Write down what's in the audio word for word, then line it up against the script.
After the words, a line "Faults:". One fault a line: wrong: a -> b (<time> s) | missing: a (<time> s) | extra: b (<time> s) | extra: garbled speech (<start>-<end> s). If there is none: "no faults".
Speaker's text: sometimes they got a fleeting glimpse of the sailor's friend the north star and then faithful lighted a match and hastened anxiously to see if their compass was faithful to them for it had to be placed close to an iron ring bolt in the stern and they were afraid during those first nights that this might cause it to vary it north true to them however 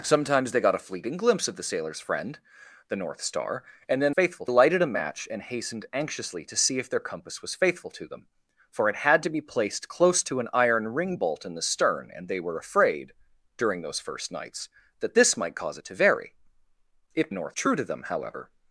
sometimes they got a fleeting glimpse of the sailor's friend the north star and then faithful lighted a match and hastened anxiously to see if their compass was faithful to them for it had to be placed close to an iron ring bolt in the stern and they were afraid during those first nights that this might cause it to vary it north true to them however
Faults:
no faults